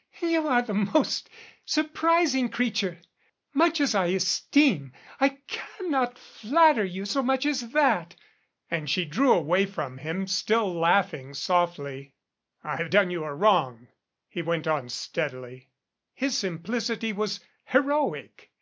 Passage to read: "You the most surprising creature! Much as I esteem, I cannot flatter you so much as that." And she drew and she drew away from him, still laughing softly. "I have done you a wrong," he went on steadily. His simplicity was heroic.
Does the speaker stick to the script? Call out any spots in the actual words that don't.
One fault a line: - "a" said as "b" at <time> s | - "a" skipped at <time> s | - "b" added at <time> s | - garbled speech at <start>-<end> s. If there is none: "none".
- "are" added at 0.5 s
- "and she drew" skipped at 9.3 s